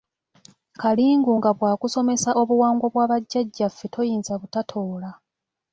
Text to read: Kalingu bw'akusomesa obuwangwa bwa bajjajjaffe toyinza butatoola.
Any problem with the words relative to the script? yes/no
yes